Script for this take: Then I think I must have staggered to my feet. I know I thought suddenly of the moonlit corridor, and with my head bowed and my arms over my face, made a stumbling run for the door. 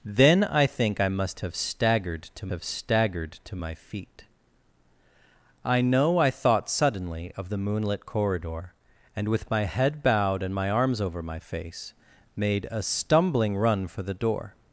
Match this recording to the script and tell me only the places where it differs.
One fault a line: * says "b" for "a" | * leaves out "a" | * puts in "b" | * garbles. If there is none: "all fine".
* puts in "have staggered to"